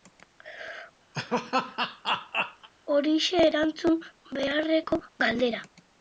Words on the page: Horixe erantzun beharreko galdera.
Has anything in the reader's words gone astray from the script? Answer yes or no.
no